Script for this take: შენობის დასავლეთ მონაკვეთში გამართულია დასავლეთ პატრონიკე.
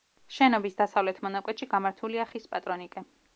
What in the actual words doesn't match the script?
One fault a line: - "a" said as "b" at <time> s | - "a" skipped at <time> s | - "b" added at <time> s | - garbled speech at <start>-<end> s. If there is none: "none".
- "დასავლეთ" said as "ხის" at 2.3 s